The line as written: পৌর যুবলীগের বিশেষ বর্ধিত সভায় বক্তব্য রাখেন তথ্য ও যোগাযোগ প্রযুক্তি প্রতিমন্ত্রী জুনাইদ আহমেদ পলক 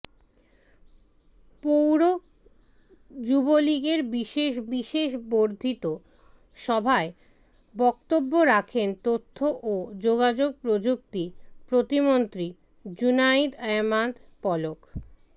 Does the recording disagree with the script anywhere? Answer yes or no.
yes